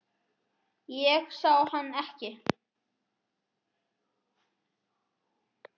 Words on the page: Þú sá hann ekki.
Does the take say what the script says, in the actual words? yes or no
no